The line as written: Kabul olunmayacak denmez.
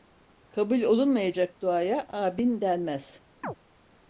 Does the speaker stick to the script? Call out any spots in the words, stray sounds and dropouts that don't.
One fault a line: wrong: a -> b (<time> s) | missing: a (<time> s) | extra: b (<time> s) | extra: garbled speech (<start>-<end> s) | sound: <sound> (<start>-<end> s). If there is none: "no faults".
extra: duaya amin (1.6 s)
sound: chirp (3.4-3.6 s)